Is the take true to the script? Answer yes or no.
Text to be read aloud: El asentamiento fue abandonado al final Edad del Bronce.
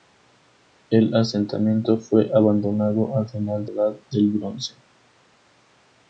yes